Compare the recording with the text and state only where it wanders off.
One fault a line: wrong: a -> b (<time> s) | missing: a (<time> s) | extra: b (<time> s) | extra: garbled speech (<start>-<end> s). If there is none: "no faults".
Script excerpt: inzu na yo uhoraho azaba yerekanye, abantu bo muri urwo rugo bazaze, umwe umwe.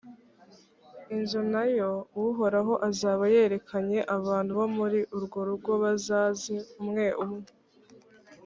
no faults